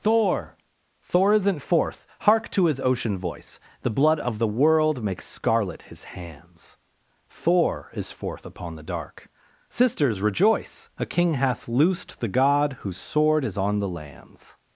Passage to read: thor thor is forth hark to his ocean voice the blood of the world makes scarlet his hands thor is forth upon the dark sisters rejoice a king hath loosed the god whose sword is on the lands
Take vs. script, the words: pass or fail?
fail